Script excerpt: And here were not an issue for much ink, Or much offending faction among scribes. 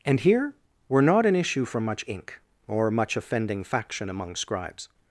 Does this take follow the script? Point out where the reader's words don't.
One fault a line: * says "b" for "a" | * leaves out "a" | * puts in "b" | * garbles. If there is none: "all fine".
all fine